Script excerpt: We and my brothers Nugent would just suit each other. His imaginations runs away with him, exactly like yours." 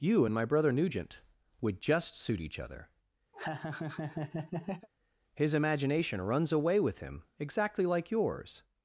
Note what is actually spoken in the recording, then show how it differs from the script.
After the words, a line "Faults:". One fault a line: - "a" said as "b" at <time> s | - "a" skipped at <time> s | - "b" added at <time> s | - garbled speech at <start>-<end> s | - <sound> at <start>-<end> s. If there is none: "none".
You and my brother Nugent would just suit each other. His imagination runs away with him, exactly like yours."
Faults:
- "We" said as "You" at 0.0 s
- "brothers" said as "brother" at 0.5 s
- laugh at 3.3-4.9 s
- "imaginations" said as "imagination" at 5.5 s